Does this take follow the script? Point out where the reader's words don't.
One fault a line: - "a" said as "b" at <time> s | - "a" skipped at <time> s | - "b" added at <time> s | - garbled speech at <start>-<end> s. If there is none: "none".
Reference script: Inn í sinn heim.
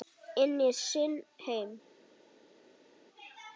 none